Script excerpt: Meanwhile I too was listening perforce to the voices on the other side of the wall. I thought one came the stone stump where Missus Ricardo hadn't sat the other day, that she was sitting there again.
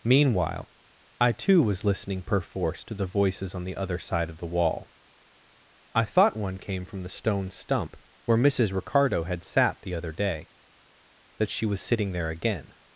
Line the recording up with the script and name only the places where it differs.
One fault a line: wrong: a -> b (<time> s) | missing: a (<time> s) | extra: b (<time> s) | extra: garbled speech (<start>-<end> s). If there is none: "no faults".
extra: from (6.8 s)
wrong: hadn't -> had (9.2 s)